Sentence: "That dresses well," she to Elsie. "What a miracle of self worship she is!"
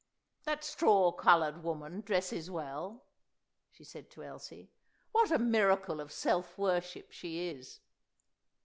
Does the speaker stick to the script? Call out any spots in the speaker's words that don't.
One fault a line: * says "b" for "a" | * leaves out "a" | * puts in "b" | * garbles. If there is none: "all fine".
* puts in "straw coloured woman"
* puts in "said"